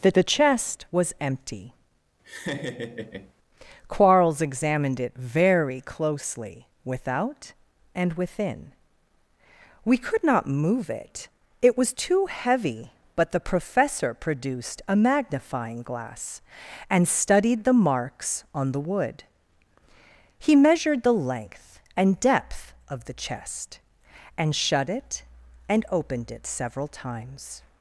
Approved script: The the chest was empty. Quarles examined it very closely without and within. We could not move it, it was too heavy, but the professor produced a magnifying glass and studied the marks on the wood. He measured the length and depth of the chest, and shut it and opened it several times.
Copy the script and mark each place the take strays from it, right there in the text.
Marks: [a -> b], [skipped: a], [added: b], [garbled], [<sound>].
The the chest was empty. [laugh] Quarles examined it very closely without and within. We could not move it, it was too heavy, but the professor produced a magnifying glass and studied the marks on the wood. He measured the length and depth of the chest, and shut it and opened it several times.